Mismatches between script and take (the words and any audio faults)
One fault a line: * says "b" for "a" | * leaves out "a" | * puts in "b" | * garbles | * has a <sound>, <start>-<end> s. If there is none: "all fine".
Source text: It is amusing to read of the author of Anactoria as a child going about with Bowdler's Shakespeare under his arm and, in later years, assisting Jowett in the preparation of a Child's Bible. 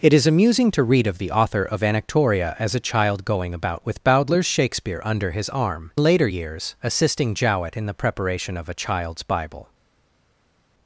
* leaves out "and in"